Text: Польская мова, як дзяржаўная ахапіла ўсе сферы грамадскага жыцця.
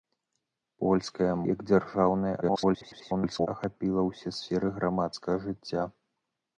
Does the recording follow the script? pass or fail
fail